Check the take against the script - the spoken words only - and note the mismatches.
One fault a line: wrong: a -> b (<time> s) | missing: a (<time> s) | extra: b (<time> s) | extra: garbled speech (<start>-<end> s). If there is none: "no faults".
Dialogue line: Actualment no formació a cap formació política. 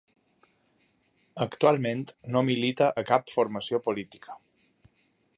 wrong: formació -> milita (2.5 s)